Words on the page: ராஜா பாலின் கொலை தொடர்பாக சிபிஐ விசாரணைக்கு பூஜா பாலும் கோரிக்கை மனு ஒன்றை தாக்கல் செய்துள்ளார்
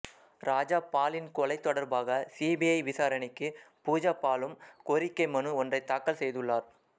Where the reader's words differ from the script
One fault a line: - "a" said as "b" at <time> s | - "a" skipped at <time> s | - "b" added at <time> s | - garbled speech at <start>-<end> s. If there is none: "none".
none